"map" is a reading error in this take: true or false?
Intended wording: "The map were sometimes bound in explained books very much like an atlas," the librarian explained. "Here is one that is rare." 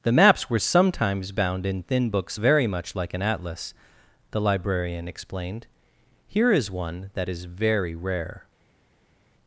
true